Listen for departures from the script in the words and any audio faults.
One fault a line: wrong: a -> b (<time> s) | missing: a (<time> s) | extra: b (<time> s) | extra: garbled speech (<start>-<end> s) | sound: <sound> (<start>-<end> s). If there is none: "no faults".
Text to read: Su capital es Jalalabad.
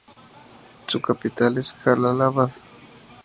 no faults